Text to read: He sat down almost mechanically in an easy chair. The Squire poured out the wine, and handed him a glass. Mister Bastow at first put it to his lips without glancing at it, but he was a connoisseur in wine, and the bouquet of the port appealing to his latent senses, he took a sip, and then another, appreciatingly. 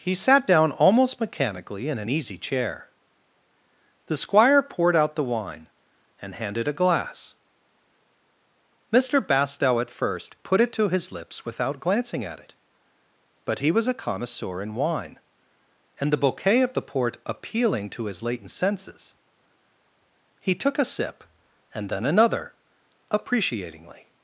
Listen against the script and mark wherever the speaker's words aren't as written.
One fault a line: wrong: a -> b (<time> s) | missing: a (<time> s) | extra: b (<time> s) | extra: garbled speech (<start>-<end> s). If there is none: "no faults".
missing: him (6.7 s)